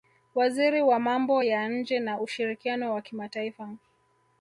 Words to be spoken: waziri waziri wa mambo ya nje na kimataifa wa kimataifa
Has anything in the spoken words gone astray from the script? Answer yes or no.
yes